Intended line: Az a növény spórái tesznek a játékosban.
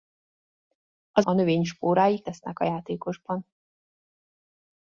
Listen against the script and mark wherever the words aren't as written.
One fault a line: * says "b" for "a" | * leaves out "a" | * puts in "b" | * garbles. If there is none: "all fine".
all fine